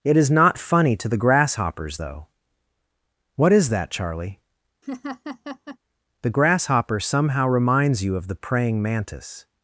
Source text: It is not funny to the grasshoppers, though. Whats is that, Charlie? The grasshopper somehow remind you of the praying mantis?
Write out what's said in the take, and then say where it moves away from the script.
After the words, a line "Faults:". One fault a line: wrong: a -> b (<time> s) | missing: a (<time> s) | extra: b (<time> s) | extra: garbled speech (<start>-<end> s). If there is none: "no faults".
It is not funny to the grasshoppers, though. What is that, Charlie? The grasshopper somehow reminds you of the praying mantis?
Faults:
wrong: Whats -> What (3.3 s)
wrong: remind -> reminds (7.5 s)